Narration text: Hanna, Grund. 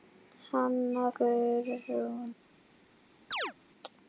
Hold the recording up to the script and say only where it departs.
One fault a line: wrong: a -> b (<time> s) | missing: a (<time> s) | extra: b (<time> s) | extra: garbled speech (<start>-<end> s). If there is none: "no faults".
no faults